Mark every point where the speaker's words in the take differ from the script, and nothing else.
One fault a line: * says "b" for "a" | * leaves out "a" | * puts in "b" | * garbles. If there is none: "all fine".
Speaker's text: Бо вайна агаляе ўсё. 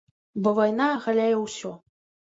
all fine